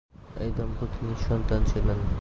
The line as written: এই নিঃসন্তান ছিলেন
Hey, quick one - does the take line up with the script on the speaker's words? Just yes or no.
no